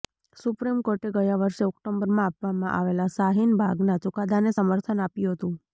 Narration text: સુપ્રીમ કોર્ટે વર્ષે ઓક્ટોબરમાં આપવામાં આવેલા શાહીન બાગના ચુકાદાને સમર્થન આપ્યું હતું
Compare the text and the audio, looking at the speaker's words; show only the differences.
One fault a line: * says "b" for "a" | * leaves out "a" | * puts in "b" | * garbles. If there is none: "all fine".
* puts in "ગયા"